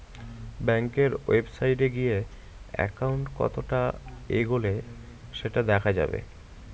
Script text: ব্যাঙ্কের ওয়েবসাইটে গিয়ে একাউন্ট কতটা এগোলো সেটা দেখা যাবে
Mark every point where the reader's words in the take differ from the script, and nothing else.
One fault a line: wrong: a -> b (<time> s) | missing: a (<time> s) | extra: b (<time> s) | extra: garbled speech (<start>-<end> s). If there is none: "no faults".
no faults